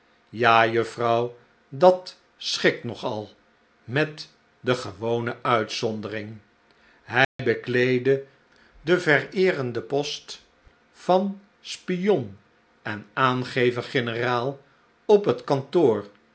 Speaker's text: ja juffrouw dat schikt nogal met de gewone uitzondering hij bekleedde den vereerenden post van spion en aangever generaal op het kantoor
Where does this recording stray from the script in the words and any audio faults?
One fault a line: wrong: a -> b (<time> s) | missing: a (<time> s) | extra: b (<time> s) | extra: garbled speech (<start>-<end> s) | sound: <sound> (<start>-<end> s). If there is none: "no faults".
sound: dropout (7.2-7.4 s)